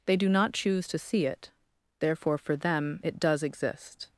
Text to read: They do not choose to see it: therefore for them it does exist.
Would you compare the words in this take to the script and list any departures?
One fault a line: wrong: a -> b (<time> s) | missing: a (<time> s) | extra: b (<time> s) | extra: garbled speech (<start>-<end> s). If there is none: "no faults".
no faults